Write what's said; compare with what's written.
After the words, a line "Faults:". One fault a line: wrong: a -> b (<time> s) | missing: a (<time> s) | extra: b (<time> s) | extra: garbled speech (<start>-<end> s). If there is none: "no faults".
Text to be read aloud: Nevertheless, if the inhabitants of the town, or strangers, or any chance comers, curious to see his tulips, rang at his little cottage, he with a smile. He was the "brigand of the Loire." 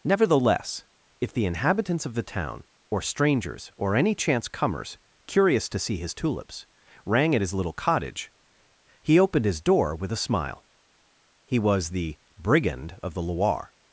Nevertheless, if the inhabitants of the town, or strangers, or any chance comers, curious to see his tulips, rang at his little cottage, he opened his door with a smile. He was the "brigand of the Loire."
Faults:
extra: opened his door (9.2 s)